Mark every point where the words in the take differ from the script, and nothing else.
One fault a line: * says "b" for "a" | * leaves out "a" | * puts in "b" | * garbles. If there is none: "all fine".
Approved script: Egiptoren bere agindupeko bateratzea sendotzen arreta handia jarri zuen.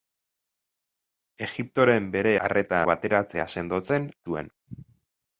* says "arreta" for "agindupeko"
* leaves out "arreta handia jarri"